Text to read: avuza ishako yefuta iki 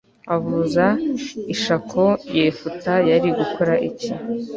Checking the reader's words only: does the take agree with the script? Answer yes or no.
no